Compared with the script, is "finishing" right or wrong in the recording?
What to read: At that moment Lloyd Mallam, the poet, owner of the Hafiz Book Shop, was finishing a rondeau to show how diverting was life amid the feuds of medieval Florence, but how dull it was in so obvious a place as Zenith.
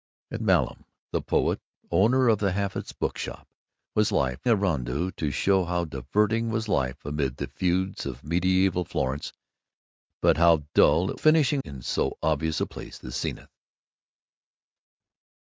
wrong